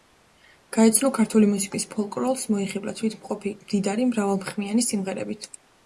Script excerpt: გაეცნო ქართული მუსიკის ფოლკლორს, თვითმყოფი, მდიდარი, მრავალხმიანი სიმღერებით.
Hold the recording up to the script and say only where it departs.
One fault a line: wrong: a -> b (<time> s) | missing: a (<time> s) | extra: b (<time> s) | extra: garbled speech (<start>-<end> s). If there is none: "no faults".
extra: მოიხიბლა (2.5 s)